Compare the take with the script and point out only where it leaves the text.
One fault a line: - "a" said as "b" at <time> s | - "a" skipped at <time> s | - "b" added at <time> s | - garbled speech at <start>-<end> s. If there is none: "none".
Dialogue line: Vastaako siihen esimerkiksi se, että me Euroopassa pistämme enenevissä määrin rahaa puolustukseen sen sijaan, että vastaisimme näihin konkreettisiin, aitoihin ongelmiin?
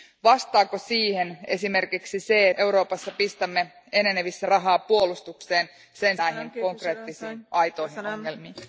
- "että me" skipped at 2.5 s
- "määrin" skipped at 4.5 s
- "sijaan että vastaisimme" skipped at 6.2 s